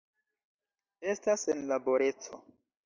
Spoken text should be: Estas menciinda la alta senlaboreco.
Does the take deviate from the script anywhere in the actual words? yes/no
yes